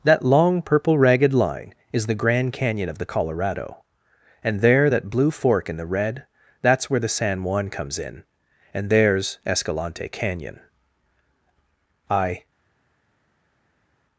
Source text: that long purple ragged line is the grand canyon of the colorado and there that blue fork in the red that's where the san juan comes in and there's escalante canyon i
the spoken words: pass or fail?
pass